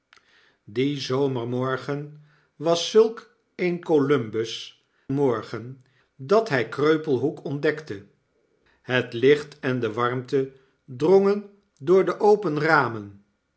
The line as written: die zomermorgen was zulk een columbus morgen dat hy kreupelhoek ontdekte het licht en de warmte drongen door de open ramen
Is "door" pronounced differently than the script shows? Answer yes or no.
no